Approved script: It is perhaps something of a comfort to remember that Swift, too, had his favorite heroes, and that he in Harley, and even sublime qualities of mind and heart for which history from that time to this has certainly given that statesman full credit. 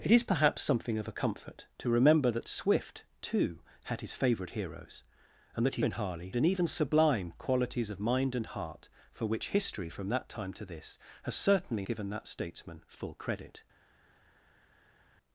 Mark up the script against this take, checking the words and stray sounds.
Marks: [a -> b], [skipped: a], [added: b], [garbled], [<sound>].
It is perhaps something of a comfort to remember that Swift, too, had his favorite heroes, and that he in Harley, and even sublime qualities of mind and heart for which history from that time to this has certainly given that statesman full credit.